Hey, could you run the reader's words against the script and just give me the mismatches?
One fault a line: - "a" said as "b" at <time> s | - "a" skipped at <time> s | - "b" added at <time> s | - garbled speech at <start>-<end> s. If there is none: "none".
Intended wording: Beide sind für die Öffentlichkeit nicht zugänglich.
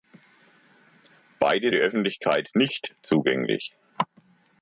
- "sind für" skipped at 1.7 s